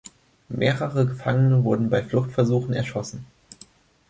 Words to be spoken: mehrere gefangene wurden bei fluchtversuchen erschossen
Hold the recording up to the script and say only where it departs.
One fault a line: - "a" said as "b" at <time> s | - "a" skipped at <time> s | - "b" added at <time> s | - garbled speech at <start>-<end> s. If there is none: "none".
none